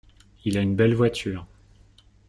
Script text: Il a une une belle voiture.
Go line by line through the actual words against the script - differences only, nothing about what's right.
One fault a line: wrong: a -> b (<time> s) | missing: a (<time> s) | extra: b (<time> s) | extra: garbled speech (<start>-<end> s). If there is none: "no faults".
missing: une (0.7 s)